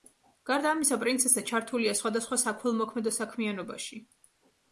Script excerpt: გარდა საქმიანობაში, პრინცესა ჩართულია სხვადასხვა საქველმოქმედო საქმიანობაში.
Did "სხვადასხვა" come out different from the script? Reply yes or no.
no